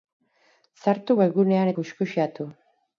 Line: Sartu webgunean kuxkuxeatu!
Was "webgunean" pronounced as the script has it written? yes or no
yes